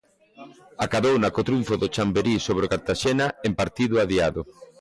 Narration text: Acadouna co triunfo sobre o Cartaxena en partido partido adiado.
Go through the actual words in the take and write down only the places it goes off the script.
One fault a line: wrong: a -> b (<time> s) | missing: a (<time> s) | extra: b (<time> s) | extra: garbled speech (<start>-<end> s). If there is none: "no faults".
extra: do Chamberí (1.8 s)
missing: partido (3.9 s)